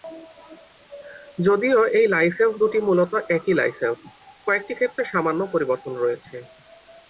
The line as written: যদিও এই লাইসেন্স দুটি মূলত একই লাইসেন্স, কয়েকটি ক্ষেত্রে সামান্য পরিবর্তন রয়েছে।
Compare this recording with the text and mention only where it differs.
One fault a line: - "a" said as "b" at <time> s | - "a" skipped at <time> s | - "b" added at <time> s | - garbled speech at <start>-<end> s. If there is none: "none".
none